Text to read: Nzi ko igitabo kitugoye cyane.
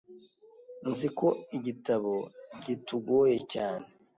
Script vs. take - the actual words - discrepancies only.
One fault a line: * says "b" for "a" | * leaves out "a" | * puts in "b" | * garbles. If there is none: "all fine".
all fine